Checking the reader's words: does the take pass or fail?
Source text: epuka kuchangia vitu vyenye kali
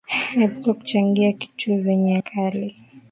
pass